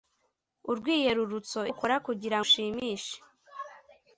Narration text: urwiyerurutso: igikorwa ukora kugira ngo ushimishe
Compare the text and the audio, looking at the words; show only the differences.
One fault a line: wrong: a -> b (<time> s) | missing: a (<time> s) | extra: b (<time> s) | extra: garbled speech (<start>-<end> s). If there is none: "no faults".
missing: igikorwa (1.6 s)
missing: ngo (2.4 s)